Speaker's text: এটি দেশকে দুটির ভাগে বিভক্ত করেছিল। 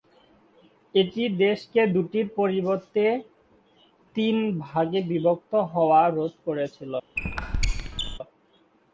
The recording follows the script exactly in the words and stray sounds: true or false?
false